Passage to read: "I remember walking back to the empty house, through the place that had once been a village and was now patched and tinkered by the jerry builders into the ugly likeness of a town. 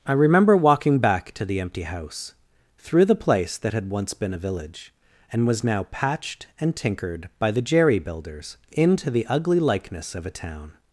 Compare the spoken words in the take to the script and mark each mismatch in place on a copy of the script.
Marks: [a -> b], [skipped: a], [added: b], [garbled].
"I remember walking back to the empty house, through the place that had once been a village and was now patched and tinkered by the jerry builders into the ugly likeness of a town.